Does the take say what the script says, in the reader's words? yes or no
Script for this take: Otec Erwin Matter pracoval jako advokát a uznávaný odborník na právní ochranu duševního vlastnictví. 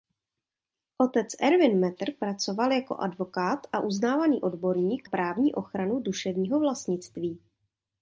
no